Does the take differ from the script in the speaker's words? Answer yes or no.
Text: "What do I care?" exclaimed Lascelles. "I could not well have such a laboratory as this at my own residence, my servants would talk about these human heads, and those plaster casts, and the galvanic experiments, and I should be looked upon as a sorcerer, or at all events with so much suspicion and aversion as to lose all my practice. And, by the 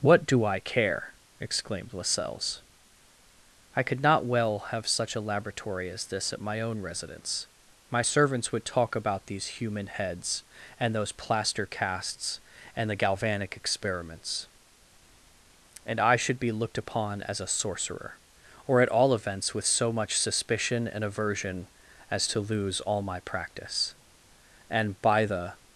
no